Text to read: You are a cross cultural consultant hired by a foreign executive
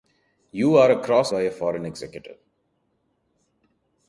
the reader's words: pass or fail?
fail